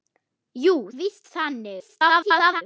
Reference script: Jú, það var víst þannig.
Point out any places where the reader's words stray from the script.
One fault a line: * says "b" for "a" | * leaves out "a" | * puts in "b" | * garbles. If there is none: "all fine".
* leaves out "það var"
* garbles